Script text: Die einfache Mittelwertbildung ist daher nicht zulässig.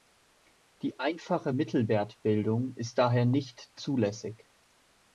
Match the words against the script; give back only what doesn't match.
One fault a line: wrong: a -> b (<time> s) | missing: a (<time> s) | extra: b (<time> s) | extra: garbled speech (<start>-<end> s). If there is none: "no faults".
no faults